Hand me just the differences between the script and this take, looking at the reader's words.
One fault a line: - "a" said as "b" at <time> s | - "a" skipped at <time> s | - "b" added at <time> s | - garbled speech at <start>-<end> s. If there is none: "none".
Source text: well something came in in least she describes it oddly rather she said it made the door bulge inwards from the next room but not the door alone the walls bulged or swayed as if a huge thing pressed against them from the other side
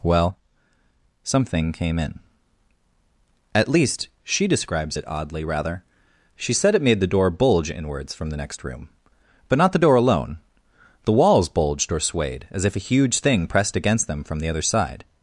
- "in" said as "at" at 3.5 s